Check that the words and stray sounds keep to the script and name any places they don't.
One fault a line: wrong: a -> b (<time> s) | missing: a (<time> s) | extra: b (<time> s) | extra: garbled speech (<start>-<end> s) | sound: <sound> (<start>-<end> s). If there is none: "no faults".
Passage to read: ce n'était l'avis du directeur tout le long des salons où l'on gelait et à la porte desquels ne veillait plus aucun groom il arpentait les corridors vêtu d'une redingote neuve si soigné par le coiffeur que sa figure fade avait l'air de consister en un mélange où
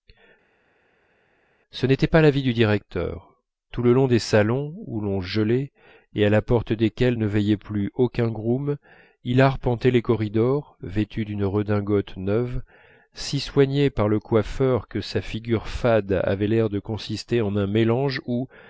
extra: pas (2.1 s)